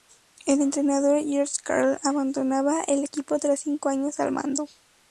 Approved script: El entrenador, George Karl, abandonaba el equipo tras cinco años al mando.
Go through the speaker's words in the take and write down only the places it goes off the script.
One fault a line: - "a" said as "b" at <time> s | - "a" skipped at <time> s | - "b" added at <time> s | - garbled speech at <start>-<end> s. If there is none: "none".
none